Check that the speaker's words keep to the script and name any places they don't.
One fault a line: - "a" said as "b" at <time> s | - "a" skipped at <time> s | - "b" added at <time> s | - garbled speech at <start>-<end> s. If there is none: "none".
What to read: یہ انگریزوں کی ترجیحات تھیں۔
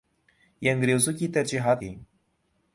none